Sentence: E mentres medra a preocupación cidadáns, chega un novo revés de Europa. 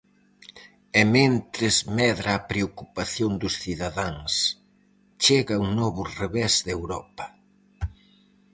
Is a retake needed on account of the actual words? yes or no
yes